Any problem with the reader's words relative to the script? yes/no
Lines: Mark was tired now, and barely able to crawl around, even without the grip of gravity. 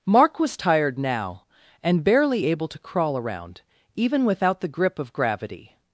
no